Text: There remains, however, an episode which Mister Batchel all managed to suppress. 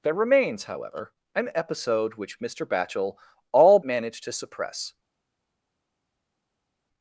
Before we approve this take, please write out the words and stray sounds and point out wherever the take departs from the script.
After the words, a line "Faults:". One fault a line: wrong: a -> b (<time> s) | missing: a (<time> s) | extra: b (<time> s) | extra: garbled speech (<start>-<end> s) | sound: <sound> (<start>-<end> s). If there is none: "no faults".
There remains, however, an episode which Mister Batchel all managed to suppress.
Faults:
no faults